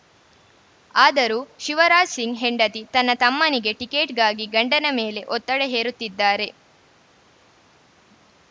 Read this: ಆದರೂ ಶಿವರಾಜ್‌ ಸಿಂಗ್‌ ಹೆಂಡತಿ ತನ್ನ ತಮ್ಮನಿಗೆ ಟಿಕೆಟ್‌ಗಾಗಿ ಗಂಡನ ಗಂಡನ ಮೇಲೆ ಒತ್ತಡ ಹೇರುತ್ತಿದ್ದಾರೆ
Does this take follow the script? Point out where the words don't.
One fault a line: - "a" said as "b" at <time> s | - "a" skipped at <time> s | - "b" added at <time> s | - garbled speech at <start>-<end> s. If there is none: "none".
- "ಗಂಡನ" skipped at 4.9 s